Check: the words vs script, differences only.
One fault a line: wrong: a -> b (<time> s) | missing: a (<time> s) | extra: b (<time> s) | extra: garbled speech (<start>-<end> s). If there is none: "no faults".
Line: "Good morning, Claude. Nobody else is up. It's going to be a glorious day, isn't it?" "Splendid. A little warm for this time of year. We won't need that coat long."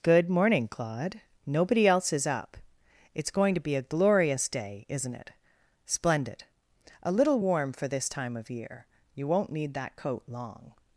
wrong: We -> You (9.1 s)